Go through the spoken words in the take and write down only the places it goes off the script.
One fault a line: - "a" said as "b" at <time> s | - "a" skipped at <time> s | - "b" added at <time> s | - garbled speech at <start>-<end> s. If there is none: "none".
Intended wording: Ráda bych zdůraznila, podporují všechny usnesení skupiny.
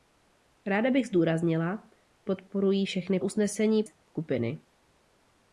none